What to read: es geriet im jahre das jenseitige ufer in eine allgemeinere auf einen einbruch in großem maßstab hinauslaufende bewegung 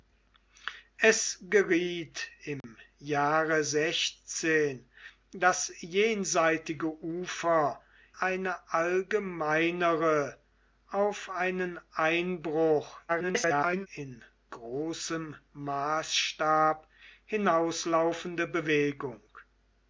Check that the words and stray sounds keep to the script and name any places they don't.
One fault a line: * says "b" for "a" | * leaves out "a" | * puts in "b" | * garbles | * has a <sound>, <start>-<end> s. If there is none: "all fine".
* has a dropout, 2.6-2.6 s
* leaves out "in"
* garbles